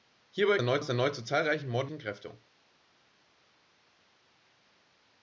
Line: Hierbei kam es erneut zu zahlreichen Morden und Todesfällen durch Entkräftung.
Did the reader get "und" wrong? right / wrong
wrong